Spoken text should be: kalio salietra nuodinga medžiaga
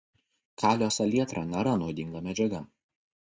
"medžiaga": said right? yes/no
yes